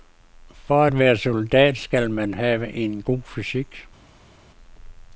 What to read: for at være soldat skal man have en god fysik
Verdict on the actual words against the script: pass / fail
pass